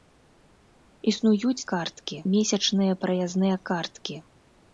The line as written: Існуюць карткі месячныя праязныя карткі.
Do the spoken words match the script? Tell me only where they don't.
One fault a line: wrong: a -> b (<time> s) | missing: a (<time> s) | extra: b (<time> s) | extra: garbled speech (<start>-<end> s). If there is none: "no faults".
no faults